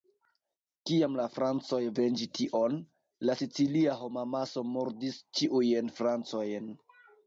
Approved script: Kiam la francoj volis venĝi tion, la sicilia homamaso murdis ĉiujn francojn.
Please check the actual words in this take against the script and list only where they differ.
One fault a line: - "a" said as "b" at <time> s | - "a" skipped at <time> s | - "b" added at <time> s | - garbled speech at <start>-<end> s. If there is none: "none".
- "volis" skipped at 1.8 s